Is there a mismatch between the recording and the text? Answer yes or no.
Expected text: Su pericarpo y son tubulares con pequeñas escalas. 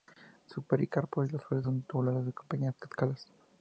yes